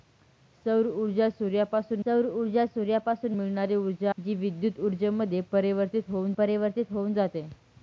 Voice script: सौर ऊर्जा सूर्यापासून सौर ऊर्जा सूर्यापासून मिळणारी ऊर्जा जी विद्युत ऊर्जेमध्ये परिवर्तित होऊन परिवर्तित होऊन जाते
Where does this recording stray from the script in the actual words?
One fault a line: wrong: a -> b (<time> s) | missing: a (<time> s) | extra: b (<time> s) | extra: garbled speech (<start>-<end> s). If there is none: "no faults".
no faults